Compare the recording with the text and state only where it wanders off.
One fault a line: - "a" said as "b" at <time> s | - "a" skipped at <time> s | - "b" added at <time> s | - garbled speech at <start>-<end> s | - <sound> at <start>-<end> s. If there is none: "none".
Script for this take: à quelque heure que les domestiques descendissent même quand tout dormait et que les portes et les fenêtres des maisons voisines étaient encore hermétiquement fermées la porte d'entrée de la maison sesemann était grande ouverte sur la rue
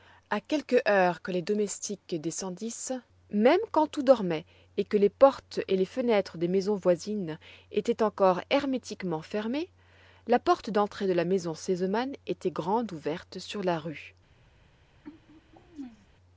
- throat clearing at 15.0-16.1 s